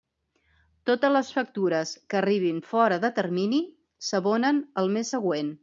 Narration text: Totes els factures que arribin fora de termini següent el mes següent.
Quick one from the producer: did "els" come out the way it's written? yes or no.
no